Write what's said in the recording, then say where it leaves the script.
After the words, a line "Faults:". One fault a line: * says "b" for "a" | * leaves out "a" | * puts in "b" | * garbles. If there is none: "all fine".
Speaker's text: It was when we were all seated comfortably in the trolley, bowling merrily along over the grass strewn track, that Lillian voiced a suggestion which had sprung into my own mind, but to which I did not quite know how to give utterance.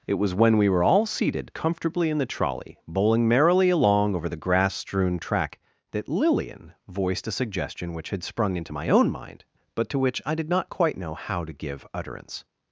It was when we were all seated comfortably in the trolley, bowling merrily along over the grass strewn track, that Lillian voiced a suggestion which had sprung into my own mind, but to which I did not quite know how to give utterance.
Faults:
all fine